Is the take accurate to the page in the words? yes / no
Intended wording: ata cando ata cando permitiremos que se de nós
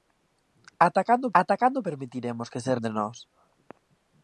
yes